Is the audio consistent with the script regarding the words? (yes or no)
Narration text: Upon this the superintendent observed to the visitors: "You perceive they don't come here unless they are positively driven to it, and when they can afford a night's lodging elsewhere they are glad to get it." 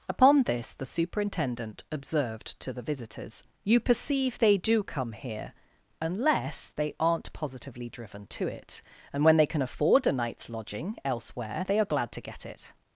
no